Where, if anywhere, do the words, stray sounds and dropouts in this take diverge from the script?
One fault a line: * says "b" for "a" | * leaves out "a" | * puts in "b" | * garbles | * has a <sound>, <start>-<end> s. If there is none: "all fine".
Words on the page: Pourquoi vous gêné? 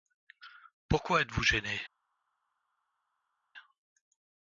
* puts in "êtes"